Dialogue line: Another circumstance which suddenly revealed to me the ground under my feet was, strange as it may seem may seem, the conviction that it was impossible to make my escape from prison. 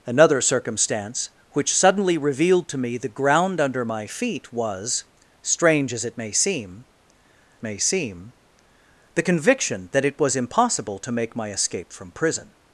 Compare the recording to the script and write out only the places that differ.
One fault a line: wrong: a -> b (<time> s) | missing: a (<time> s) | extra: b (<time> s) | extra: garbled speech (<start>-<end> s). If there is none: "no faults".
no faults